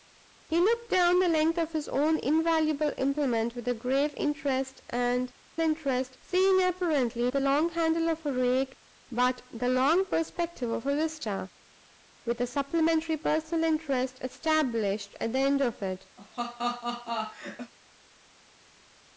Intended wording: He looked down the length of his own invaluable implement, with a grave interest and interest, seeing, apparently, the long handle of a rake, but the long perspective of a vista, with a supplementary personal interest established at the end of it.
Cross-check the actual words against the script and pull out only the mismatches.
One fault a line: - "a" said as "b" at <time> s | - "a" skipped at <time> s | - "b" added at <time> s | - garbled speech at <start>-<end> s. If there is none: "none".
none